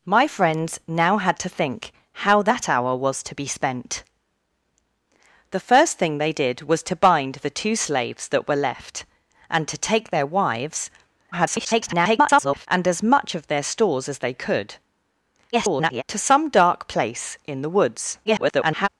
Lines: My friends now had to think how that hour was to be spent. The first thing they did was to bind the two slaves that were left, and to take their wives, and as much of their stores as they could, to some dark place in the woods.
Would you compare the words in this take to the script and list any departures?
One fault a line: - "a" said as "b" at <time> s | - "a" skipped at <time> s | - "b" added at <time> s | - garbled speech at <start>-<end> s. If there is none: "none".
- garbled speech at 11.3-12.7 s
- garbled speech at 15.5-16.0 s
- garbled speech at 18.2-18.9 s